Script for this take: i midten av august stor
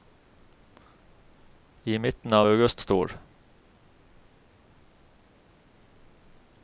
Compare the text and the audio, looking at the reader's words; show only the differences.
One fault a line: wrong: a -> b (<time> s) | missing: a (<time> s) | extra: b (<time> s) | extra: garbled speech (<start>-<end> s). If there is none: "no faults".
no faults